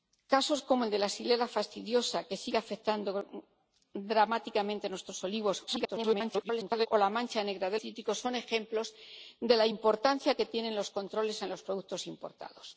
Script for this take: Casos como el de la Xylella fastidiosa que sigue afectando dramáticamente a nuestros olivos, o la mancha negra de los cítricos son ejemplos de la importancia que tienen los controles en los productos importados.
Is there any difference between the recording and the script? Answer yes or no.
yes